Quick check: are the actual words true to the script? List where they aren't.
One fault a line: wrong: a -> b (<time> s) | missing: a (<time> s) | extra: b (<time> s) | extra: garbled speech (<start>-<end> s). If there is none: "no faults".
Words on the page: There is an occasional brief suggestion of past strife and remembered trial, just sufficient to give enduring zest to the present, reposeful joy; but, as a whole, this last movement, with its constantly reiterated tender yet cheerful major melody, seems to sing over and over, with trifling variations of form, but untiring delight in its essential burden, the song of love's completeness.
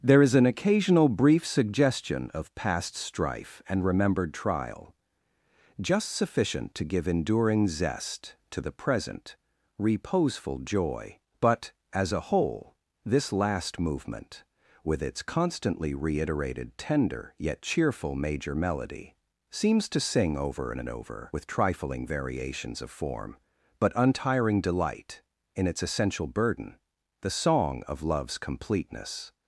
no faults